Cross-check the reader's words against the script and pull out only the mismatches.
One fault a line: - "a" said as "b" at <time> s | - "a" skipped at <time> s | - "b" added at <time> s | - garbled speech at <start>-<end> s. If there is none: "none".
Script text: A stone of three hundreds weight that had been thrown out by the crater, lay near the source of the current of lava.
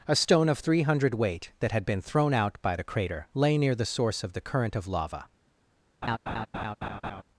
- "hundreds" said as "hundred" at 0.8 s